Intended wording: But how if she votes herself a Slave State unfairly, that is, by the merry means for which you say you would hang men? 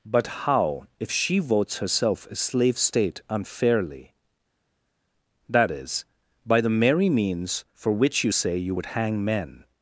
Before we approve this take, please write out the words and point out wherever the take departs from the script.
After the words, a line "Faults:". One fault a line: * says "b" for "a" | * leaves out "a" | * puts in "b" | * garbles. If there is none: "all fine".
But how if she votes herself a Slave State unfairly, that is, by the merry means for which you say you would hang men?
Faults:
all fine